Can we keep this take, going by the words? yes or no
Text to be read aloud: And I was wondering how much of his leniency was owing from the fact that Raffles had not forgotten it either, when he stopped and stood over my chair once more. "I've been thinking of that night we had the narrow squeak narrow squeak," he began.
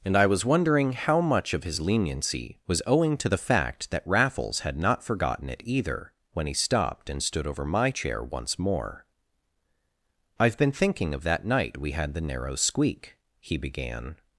no